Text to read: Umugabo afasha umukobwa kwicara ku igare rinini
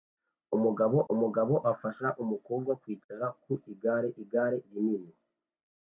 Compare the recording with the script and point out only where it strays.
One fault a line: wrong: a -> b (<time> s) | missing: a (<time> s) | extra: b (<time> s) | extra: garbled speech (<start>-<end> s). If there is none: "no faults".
extra: umugabo (1.1 s)
extra: igare (4.2 s)